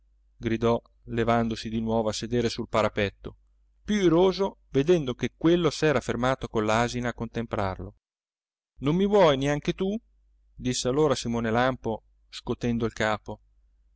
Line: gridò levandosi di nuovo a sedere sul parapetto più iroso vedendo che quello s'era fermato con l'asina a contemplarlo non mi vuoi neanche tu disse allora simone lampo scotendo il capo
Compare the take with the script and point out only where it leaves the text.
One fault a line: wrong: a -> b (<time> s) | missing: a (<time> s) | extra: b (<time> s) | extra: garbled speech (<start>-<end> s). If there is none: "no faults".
no faults